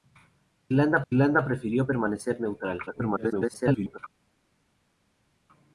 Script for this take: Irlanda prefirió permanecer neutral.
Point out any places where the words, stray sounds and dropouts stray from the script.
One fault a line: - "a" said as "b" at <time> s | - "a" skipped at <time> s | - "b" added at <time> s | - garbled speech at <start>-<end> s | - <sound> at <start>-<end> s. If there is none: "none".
- "irlanda" added at 1.1 s
- garbled speech at 2.9-4.0 s